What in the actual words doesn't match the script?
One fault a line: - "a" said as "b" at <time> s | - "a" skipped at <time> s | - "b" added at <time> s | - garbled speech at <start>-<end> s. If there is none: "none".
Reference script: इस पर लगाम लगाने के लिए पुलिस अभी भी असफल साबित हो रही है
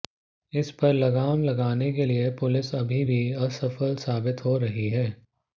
none